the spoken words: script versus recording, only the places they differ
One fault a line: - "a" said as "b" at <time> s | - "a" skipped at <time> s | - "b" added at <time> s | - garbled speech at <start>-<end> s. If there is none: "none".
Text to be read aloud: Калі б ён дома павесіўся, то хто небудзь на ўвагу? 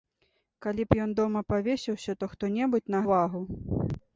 none